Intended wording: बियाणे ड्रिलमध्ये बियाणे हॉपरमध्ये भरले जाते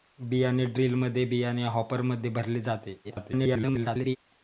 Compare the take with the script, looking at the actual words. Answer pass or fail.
fail